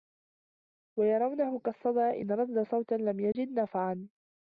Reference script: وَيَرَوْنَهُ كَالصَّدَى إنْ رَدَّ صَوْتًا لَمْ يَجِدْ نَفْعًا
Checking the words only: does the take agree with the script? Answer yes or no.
yes